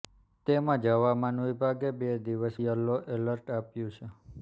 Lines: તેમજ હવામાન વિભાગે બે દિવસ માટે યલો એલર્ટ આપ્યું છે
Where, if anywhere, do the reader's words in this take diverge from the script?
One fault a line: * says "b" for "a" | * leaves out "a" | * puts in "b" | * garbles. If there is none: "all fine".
* leaves out "માટે"